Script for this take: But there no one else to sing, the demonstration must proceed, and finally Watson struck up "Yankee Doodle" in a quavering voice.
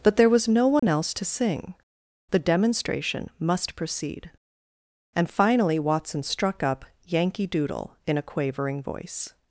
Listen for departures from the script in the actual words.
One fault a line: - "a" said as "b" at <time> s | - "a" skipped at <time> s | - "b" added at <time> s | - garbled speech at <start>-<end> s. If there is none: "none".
- "was" added at 0.3 s